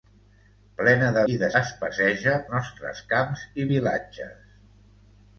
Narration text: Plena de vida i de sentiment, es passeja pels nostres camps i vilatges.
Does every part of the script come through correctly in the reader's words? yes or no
no